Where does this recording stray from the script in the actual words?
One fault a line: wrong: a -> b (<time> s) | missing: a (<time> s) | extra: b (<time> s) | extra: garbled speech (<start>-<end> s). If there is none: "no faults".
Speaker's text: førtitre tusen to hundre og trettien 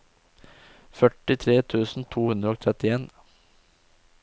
no faults